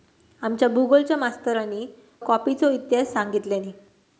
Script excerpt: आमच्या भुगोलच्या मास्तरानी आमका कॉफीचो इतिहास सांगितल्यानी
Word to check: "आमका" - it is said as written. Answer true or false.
false